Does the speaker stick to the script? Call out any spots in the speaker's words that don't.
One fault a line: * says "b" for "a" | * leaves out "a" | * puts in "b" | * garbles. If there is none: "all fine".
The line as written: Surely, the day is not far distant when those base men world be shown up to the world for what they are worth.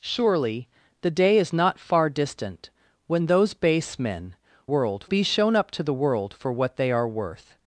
all fine